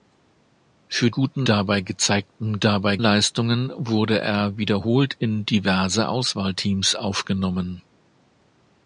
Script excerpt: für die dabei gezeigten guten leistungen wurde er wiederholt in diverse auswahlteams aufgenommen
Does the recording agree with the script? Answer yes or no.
no